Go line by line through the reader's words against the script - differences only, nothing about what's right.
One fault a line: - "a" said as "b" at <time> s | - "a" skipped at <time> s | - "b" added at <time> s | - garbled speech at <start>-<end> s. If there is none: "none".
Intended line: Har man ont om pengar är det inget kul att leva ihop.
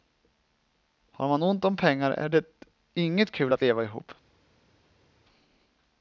none